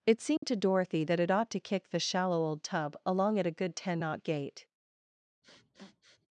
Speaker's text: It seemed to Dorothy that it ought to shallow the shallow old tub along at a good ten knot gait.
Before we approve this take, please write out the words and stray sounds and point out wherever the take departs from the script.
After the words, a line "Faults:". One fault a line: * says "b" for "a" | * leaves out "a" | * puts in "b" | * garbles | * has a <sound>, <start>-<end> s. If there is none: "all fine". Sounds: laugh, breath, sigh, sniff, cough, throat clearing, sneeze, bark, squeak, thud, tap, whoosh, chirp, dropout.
It seemed to Dorothy that it ought to kick the shallow old tub along at a good ten knot gait.
Faults:
* has a dropout, 0.4-0.4 s
* says "kick" for "shallow"
* has a sniff, 5.4-6.3 s